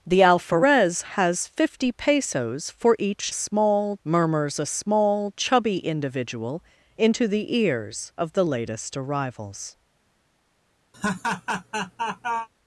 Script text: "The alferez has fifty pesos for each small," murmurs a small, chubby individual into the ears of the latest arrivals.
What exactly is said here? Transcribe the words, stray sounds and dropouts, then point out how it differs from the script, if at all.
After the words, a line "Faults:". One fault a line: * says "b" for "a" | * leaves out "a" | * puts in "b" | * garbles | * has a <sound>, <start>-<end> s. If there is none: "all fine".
"The alferez has fifty pesos for each small," murmurs a small, chubby individual into the ears of the latest arrivals.
Faults:
* has a laugh, 10.9-12.5 s